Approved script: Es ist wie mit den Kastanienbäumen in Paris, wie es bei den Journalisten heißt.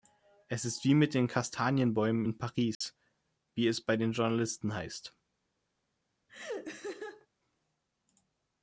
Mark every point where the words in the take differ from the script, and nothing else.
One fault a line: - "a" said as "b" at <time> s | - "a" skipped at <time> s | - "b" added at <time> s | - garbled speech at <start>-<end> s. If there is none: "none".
none